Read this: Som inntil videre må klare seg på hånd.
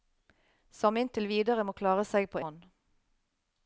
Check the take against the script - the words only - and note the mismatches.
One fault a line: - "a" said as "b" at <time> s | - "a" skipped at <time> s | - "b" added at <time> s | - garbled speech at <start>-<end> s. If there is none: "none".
none